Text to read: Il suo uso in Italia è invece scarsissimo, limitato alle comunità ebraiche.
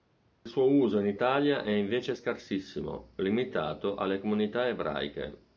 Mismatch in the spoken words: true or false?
false